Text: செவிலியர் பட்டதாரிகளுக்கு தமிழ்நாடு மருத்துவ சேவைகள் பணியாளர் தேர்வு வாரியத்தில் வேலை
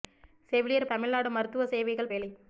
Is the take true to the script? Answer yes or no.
no